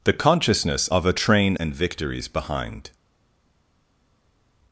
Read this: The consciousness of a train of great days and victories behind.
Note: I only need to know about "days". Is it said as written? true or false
false